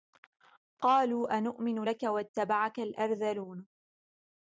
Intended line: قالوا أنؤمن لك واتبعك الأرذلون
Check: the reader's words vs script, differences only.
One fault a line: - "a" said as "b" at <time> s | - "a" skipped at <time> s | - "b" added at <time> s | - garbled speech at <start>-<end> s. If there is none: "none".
none